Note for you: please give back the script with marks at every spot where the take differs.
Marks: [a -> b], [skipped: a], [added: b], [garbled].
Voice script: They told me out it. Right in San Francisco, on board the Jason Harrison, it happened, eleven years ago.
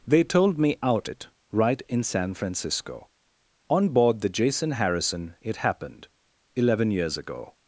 They told me out it. Right in San Francisco, on board the Jason Harrison, it happened, eleven years ago.